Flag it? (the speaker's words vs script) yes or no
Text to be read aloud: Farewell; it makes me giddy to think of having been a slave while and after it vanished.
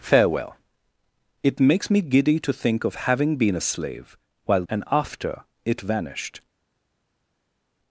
no